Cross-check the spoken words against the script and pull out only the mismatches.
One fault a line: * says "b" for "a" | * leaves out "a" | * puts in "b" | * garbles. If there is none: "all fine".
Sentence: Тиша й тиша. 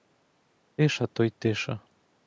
* puts in "то"